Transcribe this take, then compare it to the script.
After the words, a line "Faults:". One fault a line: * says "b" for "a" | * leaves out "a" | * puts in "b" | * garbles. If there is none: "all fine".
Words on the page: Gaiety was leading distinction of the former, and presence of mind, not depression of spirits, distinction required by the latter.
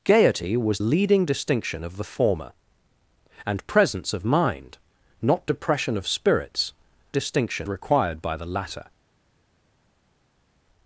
Gaiety was leading distinction of the former, and presence of mind, not depression of spirits, distinction required by the latter.
Faults:
all fine